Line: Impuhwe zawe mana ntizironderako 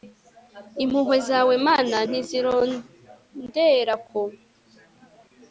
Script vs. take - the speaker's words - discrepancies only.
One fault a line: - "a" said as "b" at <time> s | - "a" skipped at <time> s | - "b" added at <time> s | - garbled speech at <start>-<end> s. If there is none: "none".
none